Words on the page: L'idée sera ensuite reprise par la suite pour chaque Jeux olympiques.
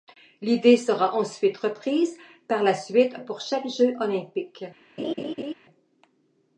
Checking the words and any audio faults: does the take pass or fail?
fail